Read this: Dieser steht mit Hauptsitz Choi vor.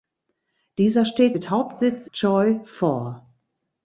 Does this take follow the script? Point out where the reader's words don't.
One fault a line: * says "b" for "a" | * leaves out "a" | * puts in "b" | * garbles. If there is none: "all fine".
all fine